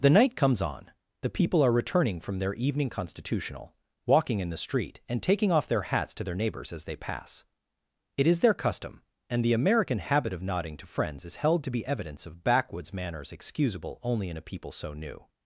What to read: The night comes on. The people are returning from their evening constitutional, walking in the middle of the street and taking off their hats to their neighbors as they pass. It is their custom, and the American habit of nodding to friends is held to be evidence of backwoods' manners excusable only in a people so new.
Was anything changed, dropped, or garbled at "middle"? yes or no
yes